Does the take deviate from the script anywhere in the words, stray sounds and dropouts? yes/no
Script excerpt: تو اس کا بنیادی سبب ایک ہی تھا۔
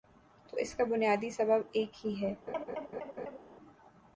yes